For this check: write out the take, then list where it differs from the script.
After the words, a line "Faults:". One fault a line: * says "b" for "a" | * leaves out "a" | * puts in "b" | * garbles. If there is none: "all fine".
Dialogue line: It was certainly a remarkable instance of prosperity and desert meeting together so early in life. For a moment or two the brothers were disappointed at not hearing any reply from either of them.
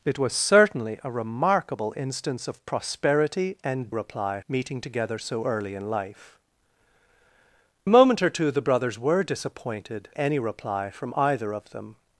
It was certainly a remarkable instance of prosperity and reply meeting together so early in life. A moment or two the brothers were disappointed any reply from either of them.
Faults:
* says "reply" for "desert"
* leaves out "For"
* leaves out "at not hearing"